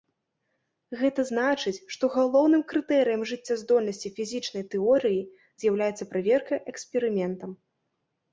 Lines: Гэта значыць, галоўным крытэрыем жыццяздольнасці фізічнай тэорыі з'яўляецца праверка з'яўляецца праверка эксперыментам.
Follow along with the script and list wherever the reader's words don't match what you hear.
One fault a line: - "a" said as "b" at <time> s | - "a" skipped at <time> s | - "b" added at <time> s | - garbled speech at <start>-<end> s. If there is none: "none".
- "што" added at 2.0 s
- "з'яўляецца праверка" skipped at 6.5 s